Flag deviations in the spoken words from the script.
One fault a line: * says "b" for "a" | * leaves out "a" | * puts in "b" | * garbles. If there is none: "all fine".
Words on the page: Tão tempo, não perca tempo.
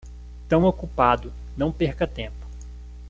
* says "ocupado" for "tempo"